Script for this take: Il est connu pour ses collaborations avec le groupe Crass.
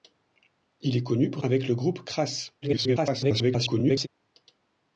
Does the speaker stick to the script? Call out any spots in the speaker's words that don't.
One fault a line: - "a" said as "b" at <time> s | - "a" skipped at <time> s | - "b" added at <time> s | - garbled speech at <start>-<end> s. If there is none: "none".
- "ses collaborations" skipped at 1.4 s
- garbled speech at 2.6-4.1 s